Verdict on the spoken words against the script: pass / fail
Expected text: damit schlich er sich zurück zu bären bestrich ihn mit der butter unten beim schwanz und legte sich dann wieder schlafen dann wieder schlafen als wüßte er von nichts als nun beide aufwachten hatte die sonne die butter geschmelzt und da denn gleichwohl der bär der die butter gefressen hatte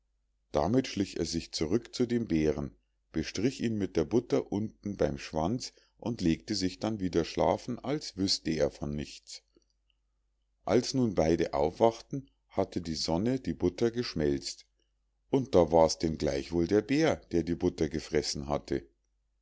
fail